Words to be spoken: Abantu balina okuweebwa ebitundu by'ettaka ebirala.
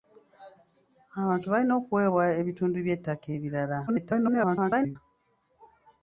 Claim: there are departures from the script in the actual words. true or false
true